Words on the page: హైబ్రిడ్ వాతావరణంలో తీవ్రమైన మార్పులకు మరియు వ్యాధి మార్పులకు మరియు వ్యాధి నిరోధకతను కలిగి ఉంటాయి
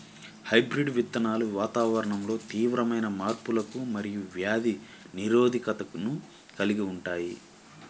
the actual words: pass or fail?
fail